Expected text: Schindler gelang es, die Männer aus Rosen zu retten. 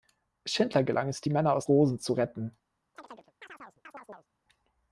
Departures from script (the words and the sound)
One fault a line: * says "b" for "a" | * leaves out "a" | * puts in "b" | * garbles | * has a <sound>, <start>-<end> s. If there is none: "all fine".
* has a chirp, 2.9-4.3 s